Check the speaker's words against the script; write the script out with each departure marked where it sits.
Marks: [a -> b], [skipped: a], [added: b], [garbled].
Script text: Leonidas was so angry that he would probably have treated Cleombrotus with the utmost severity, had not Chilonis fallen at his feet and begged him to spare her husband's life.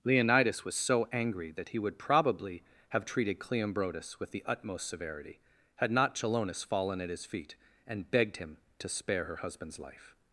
Leonidas was so angry that he would probably have treated Cleombrotus with the utmost severity, had not Chilonis fallen at his feet and begged him to spare her husband's life.